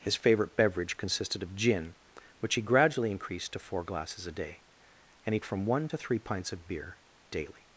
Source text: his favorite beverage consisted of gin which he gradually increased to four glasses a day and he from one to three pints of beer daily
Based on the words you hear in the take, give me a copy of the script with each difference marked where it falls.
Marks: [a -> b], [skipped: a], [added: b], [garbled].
his favorite beverage consisted of gin which he gradually increased to four glasses a day and he from one to three pints of beer daily